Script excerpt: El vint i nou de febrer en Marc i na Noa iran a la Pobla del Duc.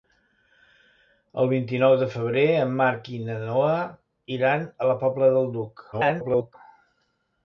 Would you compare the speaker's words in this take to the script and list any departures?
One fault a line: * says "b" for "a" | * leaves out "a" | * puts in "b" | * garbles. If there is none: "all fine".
* garbles